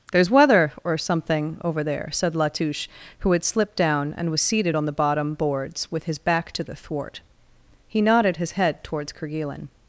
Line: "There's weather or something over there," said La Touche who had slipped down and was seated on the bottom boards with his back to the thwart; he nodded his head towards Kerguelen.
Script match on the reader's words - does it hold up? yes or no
yes